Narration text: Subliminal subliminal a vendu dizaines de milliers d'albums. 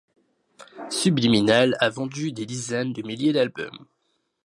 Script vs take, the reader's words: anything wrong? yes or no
yes